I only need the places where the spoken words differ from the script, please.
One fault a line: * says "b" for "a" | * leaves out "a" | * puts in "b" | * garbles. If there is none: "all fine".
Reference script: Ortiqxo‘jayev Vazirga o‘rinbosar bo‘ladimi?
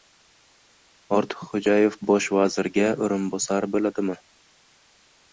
* puts in "Bosh"